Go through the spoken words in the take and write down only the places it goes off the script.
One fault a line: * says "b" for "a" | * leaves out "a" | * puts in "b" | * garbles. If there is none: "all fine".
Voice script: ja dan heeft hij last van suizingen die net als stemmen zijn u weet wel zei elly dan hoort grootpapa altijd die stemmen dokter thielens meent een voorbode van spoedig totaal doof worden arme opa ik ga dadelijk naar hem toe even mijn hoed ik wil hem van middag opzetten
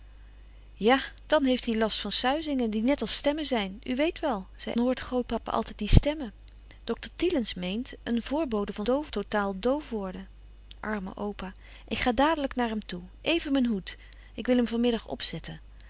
* leaves out "elly dan"
* says "doof" for "spoedig"